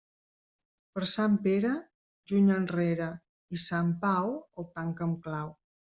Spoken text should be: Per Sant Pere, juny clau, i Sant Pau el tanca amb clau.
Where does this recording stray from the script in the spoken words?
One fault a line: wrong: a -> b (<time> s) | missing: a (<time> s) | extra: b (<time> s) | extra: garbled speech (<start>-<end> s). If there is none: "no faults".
wrong: clau -> enrere (2.6 s)